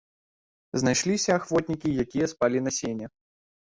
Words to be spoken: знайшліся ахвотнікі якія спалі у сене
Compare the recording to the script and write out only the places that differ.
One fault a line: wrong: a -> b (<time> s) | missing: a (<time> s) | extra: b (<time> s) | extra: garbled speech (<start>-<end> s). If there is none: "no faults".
wrong: у -> на (2.6 s)